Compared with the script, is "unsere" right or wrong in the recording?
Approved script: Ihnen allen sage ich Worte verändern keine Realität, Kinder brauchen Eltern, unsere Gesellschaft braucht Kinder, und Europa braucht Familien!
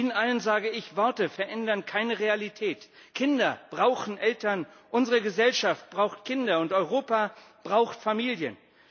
right